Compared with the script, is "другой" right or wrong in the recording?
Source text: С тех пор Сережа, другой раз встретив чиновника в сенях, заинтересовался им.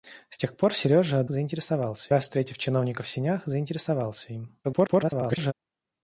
wrong